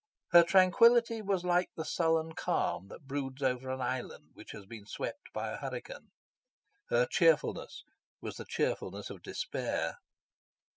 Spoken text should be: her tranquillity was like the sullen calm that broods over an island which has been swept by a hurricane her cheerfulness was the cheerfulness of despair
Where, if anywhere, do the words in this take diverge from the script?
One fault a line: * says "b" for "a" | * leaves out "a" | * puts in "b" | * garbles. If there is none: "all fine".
all fine